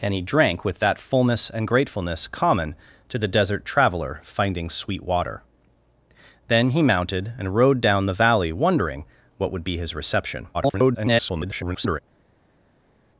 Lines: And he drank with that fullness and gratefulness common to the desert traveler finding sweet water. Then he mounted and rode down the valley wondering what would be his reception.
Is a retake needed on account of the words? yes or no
yes